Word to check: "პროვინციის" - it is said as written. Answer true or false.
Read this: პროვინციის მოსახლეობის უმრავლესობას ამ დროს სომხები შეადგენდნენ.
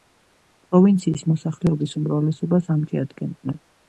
true